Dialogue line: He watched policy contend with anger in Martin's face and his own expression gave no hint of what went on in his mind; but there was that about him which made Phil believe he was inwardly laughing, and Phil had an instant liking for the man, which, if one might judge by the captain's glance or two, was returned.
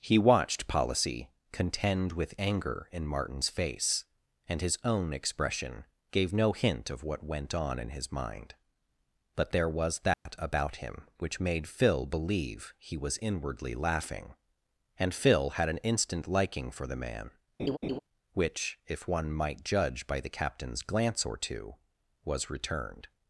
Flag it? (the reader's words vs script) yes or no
no